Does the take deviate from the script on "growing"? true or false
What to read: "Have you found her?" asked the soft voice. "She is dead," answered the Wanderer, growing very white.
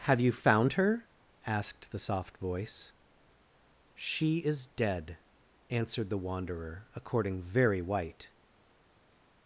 true